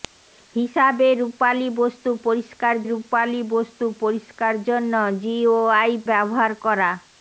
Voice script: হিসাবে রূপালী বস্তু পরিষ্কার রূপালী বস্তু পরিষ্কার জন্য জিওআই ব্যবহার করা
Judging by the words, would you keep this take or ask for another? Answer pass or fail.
pass